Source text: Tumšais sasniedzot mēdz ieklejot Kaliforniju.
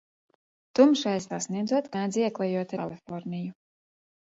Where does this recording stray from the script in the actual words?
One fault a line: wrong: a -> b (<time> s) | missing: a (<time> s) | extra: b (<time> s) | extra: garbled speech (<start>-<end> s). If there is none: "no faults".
no faults